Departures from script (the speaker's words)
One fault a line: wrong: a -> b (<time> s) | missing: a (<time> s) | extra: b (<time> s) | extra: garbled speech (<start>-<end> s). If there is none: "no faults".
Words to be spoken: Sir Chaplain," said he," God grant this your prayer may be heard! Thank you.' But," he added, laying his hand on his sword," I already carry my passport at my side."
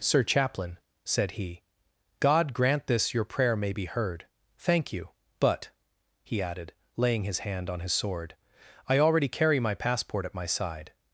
no faults